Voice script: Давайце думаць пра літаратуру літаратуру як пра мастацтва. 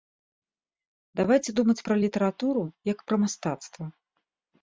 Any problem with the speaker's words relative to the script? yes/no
yes